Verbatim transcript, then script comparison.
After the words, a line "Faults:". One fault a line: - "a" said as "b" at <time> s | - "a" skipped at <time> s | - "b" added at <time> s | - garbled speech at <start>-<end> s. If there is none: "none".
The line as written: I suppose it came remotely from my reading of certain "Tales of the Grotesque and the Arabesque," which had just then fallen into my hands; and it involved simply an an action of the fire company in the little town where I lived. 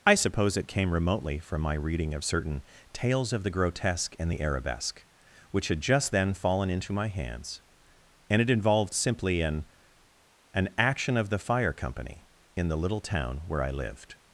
I suppose it came remotely from my reading of certain "Tales of the Grotesque and the Arabesque," which had just then fallen into my hands; and it involved simply an an action of the fire company in the little town where I lived.
Faults:
none